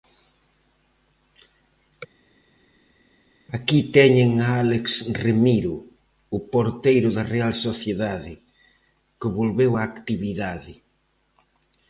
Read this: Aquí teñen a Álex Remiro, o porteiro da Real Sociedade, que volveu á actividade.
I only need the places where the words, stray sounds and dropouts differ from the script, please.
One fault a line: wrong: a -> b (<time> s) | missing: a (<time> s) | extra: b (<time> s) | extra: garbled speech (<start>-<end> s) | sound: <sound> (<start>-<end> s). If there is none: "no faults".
no faults